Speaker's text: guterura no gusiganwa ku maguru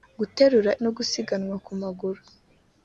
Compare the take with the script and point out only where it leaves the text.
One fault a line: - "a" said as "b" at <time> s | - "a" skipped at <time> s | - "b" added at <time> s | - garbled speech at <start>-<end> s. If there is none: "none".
none